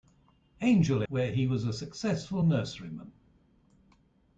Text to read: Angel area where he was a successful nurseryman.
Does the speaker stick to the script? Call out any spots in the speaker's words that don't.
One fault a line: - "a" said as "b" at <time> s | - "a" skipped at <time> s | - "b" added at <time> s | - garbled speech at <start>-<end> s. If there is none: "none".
- "area" skipped at 1.0 s